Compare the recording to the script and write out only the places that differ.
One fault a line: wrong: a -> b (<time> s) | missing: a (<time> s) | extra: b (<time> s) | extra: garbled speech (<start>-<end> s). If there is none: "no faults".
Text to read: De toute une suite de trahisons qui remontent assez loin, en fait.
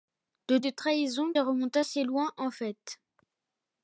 missing: toute une suite (0.6 s)
missing: qui (1.3 s)